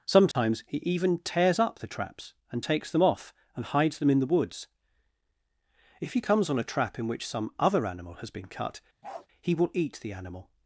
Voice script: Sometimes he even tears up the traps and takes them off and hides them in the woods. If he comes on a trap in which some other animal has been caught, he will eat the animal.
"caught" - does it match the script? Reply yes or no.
no